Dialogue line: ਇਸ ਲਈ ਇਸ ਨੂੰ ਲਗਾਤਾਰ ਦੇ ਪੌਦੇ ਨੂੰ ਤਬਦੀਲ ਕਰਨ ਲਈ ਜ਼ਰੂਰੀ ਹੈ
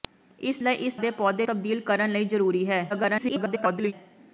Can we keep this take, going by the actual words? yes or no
no